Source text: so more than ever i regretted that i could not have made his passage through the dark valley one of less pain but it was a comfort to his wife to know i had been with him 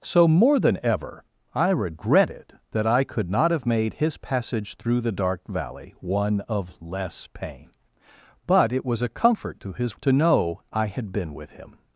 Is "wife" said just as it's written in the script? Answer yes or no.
no